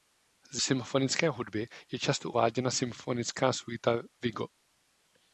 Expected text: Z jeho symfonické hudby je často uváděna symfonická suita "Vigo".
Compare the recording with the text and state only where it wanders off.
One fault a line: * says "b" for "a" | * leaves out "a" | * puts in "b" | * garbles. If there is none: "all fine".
* leaves out "jeho"